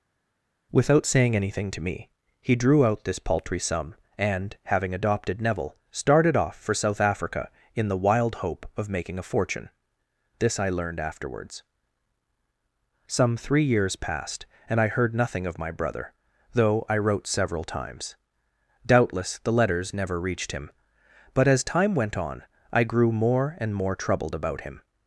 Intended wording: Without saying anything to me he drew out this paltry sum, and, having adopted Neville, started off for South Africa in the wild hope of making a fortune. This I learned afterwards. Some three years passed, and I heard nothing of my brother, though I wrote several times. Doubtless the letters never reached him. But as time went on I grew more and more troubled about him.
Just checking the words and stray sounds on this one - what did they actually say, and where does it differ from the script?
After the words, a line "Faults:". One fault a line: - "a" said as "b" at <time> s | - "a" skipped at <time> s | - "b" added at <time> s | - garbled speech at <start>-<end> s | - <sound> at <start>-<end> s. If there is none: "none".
Without saying anything to me he drew out this paltry sum, and, having adopted Neville, started off for South Africa in the wild hope of making a fortune. This I learned afterwards. Some three years passed, and I heard nothing of my brother, though I wrote several times. Doubtless the letters never reached him. But as time went on I grew more and more troubled about him.
Faults:
none